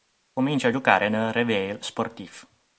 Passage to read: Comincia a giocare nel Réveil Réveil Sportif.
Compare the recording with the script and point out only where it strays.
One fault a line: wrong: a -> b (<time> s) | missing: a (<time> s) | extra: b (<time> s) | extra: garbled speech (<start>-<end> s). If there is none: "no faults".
missing: Réveil (1.8 s)